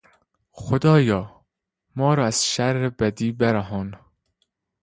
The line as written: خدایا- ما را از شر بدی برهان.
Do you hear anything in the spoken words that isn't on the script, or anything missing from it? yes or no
no